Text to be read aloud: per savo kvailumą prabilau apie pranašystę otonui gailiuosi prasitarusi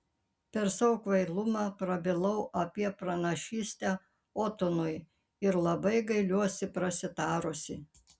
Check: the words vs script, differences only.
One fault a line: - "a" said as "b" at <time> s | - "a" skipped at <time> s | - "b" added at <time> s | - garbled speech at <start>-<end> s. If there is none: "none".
- "ir labai" added at 5.5 s